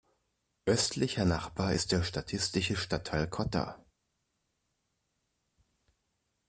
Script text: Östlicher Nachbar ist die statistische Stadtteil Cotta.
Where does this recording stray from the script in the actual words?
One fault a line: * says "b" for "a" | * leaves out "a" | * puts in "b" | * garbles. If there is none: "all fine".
* says "der" for "die"